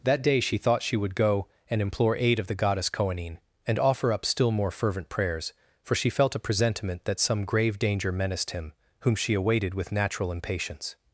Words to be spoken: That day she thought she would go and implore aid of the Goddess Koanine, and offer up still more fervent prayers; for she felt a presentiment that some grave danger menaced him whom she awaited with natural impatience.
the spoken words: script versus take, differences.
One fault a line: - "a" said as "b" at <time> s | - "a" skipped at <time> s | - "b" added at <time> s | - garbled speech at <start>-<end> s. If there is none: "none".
none